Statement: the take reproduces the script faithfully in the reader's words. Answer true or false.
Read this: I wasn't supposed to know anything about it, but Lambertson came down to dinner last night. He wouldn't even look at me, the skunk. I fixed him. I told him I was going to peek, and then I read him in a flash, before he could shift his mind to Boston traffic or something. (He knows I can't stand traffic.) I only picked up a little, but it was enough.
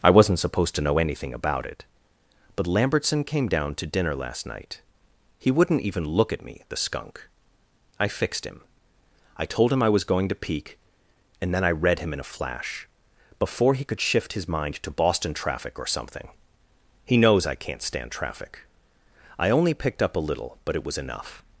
true